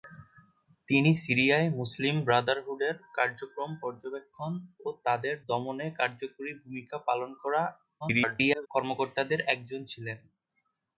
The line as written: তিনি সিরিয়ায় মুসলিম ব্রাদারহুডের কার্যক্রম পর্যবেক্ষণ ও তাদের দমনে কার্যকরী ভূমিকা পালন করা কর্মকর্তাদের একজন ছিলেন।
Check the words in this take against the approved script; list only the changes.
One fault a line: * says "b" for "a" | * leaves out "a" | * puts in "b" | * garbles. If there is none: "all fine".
* garbles